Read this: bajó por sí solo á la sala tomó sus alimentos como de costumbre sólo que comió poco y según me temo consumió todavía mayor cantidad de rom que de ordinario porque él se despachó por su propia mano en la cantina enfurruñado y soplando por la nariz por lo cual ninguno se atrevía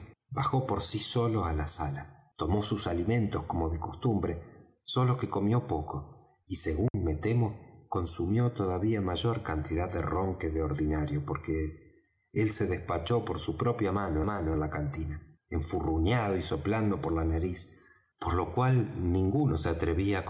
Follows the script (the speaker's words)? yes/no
no